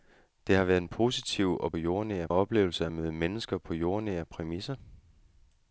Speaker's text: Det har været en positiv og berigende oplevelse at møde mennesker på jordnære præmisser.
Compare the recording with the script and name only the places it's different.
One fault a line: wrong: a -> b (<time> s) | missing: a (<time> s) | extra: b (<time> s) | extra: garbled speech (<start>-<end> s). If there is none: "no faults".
wrong: berigende -> jordnære (1.8 s)